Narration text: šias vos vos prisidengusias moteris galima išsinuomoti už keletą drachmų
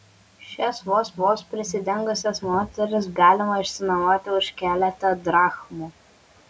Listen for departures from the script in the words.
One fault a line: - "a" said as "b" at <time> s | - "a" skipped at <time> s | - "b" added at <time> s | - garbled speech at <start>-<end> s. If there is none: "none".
none